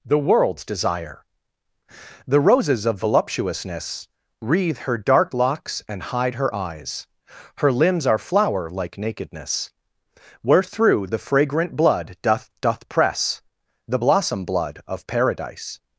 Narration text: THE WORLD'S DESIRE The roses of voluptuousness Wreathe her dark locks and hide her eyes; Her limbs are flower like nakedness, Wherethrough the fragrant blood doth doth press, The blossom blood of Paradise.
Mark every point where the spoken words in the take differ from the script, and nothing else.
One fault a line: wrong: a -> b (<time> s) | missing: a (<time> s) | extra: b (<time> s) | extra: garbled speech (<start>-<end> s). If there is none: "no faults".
no faults